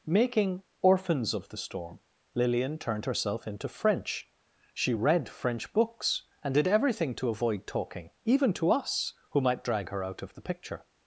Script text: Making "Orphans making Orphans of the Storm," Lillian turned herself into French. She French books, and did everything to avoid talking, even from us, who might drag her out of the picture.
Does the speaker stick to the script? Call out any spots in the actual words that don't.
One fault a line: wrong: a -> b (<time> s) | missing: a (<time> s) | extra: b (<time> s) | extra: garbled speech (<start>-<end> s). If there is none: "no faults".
missing: making Orphans (1.3 s)
extra: read (4.9 s)
wrong: from -> to (8.5 s)